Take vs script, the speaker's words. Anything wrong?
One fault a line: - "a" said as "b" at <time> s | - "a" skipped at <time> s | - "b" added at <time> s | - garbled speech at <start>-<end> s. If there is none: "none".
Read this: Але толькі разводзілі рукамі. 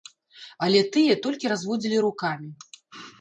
- "тыя" added at 0.9 s